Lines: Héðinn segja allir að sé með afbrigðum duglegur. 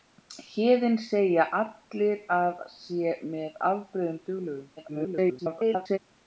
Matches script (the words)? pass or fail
fail